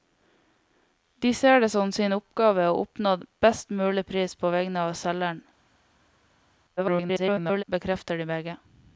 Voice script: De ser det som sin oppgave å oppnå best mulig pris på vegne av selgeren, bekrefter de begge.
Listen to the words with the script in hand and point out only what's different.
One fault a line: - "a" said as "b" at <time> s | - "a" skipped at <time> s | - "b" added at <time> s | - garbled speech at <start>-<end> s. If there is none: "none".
- garbled speech at 6.8-7.6 s